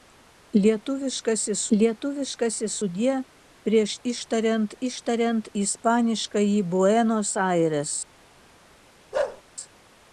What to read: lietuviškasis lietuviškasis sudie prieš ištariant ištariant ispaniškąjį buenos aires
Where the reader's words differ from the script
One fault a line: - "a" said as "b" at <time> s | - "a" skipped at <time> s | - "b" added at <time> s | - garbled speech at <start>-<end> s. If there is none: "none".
none